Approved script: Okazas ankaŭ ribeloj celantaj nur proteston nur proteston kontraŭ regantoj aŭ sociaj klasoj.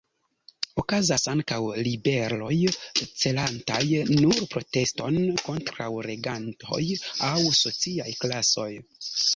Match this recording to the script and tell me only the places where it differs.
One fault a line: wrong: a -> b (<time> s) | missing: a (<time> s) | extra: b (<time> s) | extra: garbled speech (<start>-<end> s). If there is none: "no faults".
missing: nur proteston (5.2 s)